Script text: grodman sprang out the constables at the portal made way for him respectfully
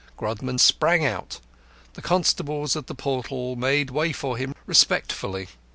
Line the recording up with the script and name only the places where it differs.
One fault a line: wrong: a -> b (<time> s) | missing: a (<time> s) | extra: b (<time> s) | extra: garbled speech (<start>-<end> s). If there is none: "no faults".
no faults